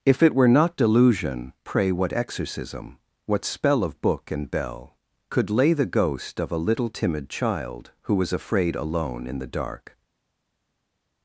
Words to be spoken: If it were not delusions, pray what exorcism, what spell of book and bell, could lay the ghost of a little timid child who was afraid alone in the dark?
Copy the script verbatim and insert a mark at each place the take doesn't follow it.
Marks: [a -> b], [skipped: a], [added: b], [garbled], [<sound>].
If it were not [delusions, -> delusion] pray what exorcism, what spell of book and bell, could lay the ghost of a little timid child who was afraid alone in the dark?